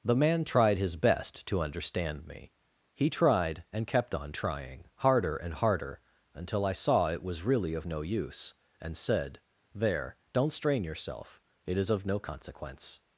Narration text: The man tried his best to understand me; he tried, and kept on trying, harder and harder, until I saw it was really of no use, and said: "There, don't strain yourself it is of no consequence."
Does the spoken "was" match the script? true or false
true